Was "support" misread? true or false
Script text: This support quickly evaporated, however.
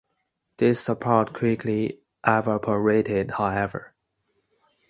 false